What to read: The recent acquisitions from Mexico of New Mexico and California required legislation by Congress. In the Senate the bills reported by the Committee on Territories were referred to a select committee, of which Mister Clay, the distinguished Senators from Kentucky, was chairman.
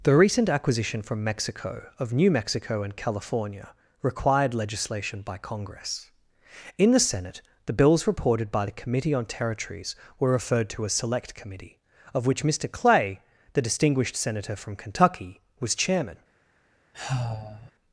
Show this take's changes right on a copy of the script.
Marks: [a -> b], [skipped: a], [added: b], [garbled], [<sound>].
The recent [acquisitions -> acquisition] from Mexico of New Mexico and California required legislation by Congress. In the Senate the bills reported by the Committee on Territories were referred to a select committee, of which Mister Clay, the distinguished [Senators -> Senator] from Kentucky, was chairman. [sigh]